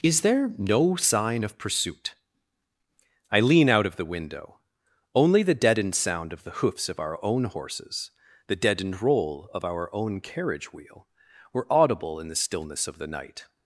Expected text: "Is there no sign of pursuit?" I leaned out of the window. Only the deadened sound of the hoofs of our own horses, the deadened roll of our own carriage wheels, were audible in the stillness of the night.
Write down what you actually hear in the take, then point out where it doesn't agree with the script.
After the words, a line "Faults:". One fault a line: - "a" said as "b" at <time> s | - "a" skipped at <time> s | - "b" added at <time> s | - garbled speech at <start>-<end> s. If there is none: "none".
"Is there no sign of pursuit?" I lean out of the window. Only the deadened sound of the hoofs of our own horses, the deadened roll of our own carriage wheel, were audible in the stillness of the night.
Faults:
- "leaned" said as "lean" at 3.4 s
- "wheels" said as "wheel" at 10.7 s